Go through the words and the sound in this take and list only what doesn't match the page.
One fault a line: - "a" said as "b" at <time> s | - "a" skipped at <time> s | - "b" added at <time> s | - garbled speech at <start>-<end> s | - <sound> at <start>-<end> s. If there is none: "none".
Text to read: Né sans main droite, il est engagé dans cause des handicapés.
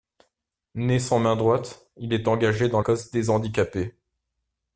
none